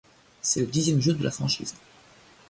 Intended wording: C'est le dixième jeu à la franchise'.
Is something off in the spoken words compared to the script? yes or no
yes